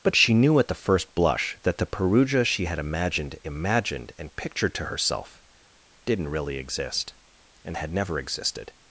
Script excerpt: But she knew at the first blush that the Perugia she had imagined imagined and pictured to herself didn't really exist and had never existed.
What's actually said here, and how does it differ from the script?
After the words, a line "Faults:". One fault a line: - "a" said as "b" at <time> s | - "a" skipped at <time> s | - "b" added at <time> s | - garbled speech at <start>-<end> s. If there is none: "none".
But she knew at the first blush that the Perugia she had imagined imagined and pictured to herself didn't really exist and had never existed.
Faults:
none